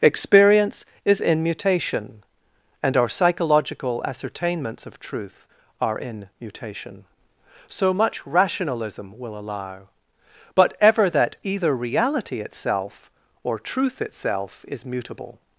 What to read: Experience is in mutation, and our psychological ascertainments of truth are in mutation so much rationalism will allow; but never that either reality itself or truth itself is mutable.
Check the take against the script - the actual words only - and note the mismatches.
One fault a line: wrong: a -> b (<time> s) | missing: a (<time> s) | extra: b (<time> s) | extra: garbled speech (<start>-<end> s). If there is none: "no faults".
wrong: never -> ever (10.8 s)